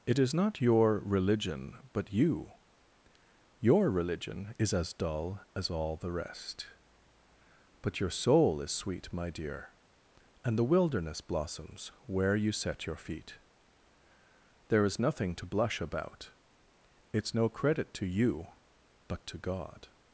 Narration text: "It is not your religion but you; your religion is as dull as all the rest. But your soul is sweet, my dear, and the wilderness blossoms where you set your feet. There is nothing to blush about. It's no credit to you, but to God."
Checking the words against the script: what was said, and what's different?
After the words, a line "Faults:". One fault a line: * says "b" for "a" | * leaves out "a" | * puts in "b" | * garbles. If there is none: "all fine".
"It is not your religion but you; your religion is as dull as all the rest. But your soul is sweet, my dear, and the wilderness blossoms where you set your feet. There is nothing to blush about. It's no credit to you, but to God."
Faults:
all fine